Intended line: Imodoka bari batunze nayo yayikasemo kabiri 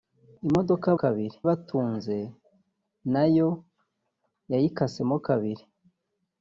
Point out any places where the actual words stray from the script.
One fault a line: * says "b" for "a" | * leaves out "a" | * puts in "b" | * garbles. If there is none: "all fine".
* says "kabiri" for "bari"